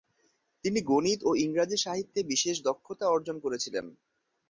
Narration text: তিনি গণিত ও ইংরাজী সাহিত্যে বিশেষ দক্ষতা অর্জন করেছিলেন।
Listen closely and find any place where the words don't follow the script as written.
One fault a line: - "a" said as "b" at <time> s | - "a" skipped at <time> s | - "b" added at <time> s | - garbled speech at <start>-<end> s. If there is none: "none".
none